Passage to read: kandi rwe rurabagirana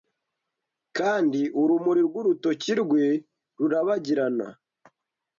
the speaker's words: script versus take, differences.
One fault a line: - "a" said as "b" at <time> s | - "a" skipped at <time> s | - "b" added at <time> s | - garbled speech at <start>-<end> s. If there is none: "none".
- "urumuri rw'urutoki" added at 1.6 s